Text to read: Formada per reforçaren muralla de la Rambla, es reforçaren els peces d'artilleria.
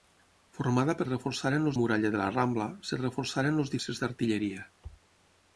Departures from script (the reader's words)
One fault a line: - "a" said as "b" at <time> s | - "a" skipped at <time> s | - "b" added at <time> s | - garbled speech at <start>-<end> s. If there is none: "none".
none